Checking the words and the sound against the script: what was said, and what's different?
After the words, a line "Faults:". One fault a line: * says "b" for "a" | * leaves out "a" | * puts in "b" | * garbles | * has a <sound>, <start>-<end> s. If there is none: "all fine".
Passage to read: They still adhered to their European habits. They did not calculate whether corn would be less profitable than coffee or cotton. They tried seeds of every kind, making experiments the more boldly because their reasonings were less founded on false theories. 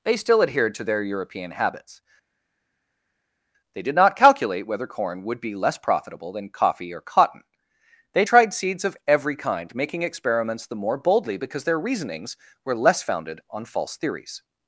They still adhered to their European habits. They did not calculate whether corn would be less profitable than coffee or cotton. They tried seeds of every kind, making experiments the more boldly because their reasonings were less founded on false theories.
Faults:
all fine